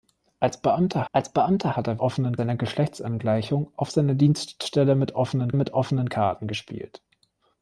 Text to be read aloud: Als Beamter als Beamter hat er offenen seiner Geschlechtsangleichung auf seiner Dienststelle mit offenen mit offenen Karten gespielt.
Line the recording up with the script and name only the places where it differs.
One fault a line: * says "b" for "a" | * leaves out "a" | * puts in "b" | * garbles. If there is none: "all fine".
all fine